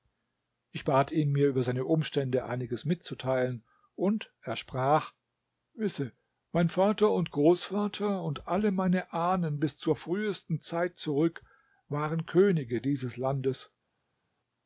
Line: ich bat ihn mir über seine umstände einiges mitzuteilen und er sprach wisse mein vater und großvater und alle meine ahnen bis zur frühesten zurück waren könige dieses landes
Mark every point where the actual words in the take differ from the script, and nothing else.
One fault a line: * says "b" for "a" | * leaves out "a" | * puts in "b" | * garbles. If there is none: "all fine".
* puts in "zeit"